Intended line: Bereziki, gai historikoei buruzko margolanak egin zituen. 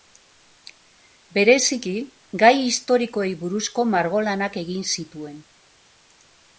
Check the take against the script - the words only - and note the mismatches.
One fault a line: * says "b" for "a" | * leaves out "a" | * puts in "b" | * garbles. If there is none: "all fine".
all fine